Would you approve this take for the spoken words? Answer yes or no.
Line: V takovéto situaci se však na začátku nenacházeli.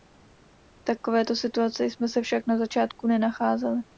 no